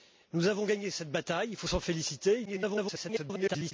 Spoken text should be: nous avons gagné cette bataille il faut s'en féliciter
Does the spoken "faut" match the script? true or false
true